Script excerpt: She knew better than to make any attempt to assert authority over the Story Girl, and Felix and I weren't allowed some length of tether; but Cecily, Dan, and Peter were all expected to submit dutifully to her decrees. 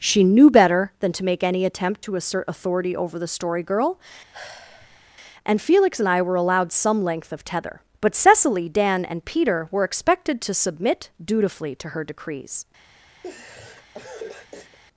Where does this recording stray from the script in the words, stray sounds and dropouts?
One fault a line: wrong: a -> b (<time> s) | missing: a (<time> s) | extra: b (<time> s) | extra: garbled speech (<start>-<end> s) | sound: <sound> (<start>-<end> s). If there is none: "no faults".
sound: sigh (4.3-5.1 s)
wrong: weren't -> were (6.2 s)
missing: all (9.8 s)
sound: laugh (13.2-14.8 s)